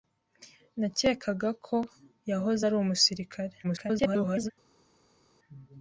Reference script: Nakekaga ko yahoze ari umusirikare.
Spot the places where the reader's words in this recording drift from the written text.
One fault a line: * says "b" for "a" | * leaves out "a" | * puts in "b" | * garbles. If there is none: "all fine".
* garbles